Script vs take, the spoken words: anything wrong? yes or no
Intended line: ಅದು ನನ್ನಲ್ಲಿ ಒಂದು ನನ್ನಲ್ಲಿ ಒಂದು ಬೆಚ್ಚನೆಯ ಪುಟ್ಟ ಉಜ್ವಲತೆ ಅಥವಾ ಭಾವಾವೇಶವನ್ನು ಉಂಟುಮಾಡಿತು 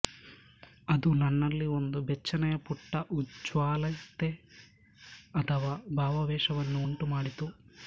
yes